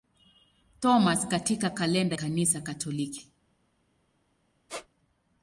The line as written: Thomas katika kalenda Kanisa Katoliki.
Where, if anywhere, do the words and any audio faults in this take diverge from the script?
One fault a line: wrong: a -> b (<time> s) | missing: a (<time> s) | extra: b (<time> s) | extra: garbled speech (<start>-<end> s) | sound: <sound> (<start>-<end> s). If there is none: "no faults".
sound: squeak (4.7-4.9 s)